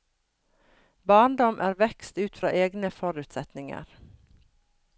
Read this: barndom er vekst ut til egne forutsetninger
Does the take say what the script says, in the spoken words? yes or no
no